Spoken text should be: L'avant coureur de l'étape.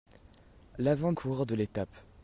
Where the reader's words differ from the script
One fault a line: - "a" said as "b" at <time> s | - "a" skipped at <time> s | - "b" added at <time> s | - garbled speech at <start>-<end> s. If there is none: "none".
none